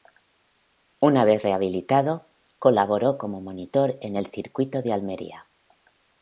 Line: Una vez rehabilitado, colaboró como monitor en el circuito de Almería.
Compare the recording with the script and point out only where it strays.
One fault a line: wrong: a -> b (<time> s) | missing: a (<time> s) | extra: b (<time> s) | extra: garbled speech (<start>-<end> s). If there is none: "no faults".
no faults